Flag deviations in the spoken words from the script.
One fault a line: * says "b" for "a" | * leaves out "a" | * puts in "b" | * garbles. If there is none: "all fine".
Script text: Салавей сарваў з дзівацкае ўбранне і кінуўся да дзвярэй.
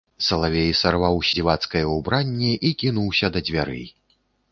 all fine